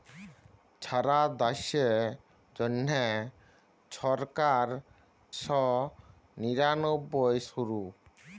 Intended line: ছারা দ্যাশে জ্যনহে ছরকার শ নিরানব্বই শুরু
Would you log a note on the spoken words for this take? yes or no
no